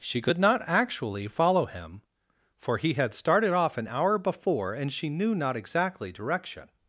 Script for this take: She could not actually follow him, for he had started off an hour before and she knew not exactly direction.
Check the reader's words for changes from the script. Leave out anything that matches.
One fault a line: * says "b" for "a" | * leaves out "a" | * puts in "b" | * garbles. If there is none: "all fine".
all fine